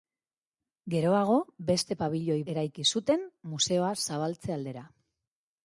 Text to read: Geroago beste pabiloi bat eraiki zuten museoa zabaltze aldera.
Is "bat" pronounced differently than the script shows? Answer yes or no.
yes